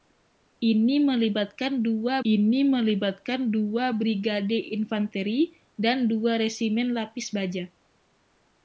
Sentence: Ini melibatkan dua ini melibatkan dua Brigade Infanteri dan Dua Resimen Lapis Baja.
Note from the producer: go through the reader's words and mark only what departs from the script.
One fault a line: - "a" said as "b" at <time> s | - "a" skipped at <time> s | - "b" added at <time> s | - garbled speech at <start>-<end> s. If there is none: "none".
none